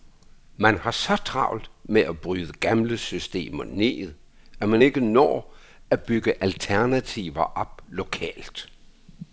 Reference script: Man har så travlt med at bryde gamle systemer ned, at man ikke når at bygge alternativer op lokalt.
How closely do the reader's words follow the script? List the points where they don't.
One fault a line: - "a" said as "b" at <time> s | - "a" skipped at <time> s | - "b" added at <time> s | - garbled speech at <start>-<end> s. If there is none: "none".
none